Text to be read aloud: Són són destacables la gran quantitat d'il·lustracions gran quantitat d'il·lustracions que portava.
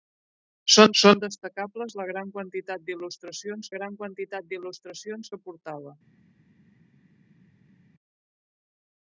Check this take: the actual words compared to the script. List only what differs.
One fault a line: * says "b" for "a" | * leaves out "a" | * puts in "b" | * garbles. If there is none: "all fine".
all fine